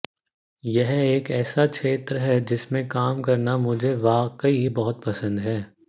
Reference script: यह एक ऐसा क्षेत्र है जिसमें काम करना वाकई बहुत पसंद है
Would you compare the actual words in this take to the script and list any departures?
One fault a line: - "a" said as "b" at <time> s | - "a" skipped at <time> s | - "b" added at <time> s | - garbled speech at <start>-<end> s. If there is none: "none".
- "मुझे" added at 3.6 s